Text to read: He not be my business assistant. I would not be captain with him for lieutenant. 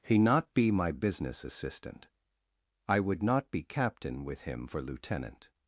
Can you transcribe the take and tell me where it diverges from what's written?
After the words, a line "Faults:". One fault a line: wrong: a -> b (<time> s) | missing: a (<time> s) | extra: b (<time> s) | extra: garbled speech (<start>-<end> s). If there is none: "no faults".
He not be my business assistant. I would not be captain with him for lieutenant.
Faults:
no faults